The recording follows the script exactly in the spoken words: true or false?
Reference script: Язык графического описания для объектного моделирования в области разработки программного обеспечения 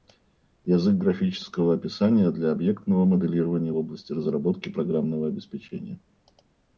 true